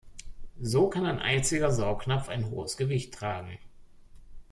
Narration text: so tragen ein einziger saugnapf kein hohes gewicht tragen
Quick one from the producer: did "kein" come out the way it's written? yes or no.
no